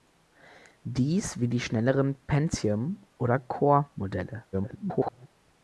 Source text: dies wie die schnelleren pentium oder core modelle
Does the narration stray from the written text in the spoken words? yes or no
yes